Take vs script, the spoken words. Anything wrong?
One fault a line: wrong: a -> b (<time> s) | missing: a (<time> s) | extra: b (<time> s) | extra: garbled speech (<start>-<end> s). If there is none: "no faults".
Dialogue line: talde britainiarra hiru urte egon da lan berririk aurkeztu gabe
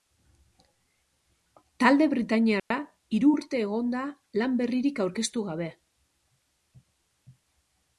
no faults